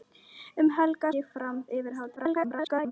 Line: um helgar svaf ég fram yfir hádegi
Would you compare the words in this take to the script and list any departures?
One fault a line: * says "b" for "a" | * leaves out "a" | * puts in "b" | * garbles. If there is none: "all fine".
* leaves out "svaf"
* garbles